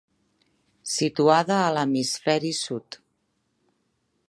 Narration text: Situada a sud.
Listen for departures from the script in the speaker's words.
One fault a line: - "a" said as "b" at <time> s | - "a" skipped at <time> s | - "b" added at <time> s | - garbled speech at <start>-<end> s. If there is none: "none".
- "l'hemisferi" added at 1.8 s